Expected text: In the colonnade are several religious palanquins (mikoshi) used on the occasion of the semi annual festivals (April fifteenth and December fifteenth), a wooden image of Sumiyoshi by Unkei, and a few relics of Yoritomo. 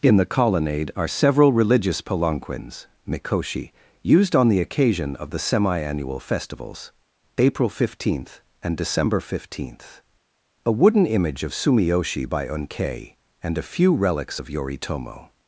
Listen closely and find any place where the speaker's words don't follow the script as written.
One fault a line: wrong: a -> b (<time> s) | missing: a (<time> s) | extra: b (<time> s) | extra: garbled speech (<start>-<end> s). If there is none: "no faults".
no faults